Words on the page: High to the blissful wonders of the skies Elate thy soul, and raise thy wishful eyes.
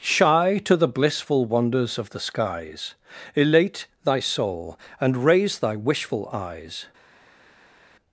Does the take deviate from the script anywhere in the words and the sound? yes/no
yes